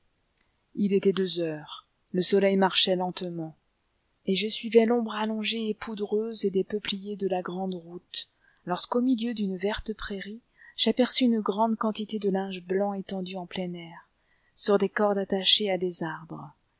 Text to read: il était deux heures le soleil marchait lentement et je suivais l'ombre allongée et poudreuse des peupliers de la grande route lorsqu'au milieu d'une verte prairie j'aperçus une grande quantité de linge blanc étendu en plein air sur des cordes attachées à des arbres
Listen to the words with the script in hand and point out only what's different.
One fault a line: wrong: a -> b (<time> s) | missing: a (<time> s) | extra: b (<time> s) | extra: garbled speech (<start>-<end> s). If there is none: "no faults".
no faults